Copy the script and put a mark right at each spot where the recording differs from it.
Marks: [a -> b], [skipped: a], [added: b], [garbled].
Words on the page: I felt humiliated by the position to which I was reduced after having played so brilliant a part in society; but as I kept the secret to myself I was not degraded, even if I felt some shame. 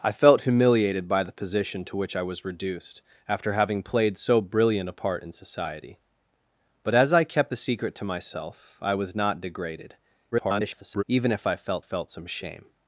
I felt humiliated by the position to which I was reduced after having played so brilliant a part in society; but as I kept the secret to myself I was not degraded, [garbled] even if I felt [added: felt] some shame.